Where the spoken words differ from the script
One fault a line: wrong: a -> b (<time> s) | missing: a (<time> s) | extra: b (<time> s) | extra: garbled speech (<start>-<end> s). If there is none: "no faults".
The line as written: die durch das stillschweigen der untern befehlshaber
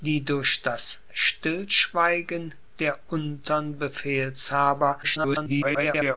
extra: garbled speech (5.0-6.2 s)